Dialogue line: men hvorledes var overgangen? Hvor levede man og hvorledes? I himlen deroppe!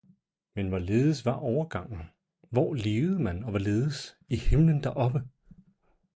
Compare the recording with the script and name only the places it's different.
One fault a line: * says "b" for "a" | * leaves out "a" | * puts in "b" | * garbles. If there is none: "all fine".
all fine